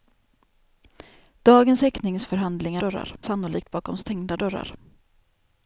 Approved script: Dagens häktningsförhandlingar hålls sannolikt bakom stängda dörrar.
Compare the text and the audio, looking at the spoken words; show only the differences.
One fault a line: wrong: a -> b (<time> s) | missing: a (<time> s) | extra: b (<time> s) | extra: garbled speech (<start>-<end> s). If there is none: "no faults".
wrong: hålls -> dörrar (2.8 s)